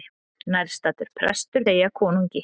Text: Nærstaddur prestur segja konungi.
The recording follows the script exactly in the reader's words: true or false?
true